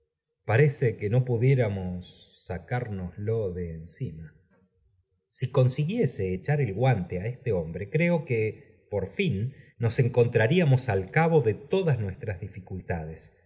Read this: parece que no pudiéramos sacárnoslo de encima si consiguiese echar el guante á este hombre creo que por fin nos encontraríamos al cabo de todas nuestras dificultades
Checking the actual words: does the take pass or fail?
pass